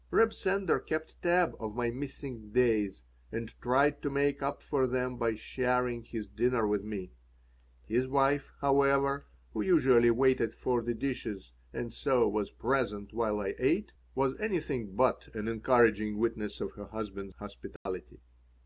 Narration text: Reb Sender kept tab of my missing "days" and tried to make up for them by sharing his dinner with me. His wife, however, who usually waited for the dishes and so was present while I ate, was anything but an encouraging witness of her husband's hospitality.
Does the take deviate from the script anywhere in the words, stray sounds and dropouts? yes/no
yes